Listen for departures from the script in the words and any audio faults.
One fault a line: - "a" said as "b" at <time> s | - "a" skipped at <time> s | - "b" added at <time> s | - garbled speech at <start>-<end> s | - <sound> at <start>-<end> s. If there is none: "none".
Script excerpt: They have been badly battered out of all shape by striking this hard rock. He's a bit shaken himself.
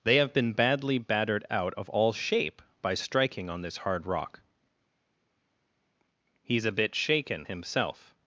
- "on" added at 3.5 s